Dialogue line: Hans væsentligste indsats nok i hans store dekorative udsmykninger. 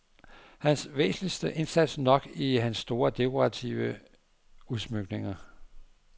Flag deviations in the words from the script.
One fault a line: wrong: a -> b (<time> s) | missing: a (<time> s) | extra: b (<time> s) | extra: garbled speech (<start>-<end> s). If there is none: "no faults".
no faults